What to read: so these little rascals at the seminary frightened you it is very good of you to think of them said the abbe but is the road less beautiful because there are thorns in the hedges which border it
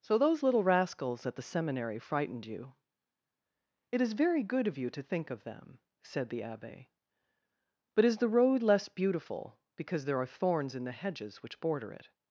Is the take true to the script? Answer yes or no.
no